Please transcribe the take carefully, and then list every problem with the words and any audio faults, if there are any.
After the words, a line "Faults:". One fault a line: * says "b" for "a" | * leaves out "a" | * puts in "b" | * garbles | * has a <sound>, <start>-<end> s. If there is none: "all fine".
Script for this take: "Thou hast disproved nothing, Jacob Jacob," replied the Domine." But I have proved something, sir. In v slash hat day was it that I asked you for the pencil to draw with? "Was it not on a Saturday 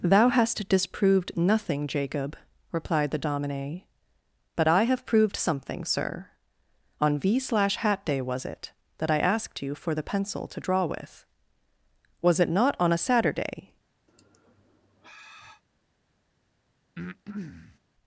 "Thou hast disproved nothing, Jacob," replied the Domine." But I have proved something, sir. On v slash hat day was it that I asked you for the pencil to draw with? "Was it not on a Saturday
Faults:
* leaves out "Jacob"
* says "On" for "In"
* has a sigh, 14.1-15.6 s
* has a breath, 17.0-17.8 s